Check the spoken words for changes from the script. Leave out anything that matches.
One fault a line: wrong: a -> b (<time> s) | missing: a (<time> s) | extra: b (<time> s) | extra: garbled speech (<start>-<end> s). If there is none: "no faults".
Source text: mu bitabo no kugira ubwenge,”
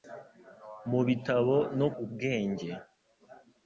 missing: kugira (1.9 s)